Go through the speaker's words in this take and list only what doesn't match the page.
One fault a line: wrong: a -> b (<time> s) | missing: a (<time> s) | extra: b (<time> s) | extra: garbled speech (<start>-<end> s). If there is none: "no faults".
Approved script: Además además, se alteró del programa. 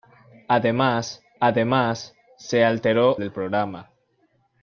no faults